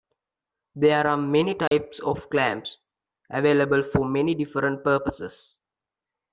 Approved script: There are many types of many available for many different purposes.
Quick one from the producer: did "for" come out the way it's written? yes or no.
yes